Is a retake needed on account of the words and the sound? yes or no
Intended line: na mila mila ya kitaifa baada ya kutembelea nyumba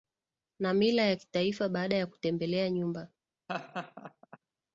yes